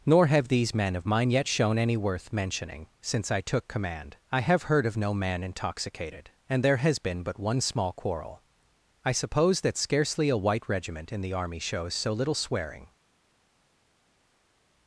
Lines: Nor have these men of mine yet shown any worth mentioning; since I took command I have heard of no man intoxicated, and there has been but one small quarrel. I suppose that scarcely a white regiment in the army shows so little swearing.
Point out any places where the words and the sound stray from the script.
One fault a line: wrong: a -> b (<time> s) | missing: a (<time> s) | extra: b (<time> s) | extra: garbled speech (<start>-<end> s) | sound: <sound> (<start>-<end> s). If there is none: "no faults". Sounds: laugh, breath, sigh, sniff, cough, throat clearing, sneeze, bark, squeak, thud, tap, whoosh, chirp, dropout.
no faults